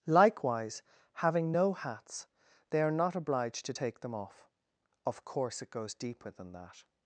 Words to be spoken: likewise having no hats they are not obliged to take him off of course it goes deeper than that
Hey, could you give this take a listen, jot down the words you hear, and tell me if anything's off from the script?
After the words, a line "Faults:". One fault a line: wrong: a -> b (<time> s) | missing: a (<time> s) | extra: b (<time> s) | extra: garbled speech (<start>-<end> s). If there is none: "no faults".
likewise having no hats they are not obliged to take them off of course it goes deeper than that
Faults:
wrong: him -> them (4.0 s)